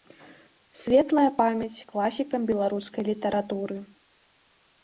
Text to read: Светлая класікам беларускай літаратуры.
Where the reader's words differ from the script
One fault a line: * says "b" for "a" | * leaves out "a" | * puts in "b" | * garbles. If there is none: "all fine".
* puts in "памяць"